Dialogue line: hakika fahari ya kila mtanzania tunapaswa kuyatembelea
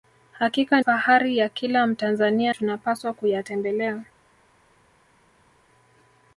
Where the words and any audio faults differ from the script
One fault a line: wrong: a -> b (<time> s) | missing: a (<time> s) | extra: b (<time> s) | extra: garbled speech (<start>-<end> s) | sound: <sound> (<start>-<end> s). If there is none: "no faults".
no faults